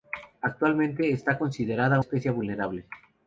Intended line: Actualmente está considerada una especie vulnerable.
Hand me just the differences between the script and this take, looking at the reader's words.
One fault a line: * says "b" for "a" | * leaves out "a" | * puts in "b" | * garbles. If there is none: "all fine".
* leaves out "una"